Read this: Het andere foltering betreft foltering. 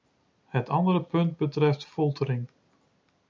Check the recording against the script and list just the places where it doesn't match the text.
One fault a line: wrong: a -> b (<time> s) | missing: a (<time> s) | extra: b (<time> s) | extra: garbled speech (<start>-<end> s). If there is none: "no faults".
wrong: foltering -> punt (1.0 s)